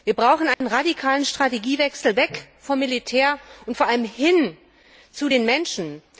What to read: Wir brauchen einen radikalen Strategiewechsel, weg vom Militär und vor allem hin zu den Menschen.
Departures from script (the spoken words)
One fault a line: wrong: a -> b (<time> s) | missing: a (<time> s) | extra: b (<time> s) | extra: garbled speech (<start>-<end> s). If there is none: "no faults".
no faults